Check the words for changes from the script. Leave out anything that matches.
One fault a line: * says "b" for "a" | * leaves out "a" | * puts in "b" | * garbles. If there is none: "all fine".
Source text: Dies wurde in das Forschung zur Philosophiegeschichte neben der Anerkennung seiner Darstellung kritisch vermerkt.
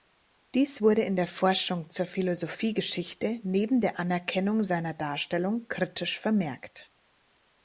* says "der" for "das"